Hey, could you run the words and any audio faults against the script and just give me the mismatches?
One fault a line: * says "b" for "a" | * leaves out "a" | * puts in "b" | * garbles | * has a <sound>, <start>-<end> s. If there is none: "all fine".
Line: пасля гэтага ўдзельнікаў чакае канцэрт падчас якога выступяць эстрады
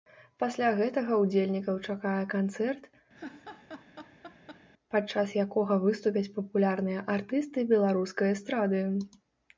* has a laugh, 3.1-4.7 s
* puts in "папулярныя артысты беларускай"